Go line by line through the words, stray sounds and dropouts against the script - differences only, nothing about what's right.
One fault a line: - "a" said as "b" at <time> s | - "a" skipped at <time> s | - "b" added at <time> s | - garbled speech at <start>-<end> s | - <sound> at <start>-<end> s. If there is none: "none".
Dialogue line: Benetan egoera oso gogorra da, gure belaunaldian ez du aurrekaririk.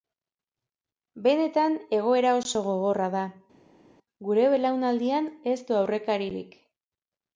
none